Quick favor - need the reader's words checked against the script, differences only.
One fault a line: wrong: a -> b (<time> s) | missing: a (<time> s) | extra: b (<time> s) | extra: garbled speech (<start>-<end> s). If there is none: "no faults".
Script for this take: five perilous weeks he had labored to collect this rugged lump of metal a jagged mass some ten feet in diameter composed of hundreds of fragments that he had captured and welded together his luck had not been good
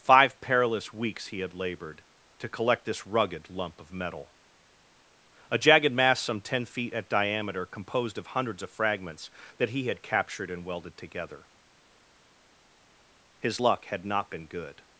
wrong: in -> at (6.9 s)